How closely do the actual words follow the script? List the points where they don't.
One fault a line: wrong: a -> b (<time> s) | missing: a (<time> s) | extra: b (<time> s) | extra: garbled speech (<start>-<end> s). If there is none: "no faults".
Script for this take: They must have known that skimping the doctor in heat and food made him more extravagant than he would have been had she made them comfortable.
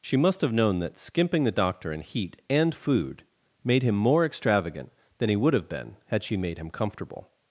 wrong: They -> She (0.0 s)
wrong: them -> him (6.6 s)